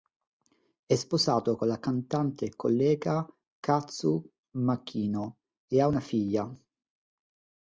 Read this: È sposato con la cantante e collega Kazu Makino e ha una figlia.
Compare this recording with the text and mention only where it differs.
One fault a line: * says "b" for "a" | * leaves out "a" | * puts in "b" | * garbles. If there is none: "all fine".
all fine